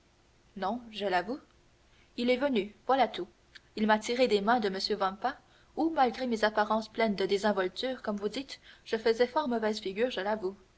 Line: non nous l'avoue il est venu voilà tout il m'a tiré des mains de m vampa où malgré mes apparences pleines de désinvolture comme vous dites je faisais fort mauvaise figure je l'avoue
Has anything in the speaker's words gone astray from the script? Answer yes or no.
yes